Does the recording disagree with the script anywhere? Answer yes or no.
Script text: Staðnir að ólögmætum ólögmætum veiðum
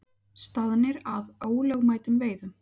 yes